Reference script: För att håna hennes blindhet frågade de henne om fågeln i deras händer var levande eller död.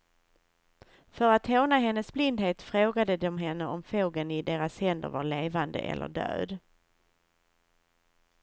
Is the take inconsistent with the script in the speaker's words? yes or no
no